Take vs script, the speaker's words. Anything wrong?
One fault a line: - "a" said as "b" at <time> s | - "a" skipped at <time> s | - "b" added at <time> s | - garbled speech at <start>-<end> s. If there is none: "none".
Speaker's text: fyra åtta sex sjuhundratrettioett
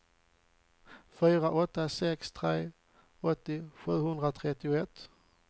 - "tre åttio" added at 2.3 s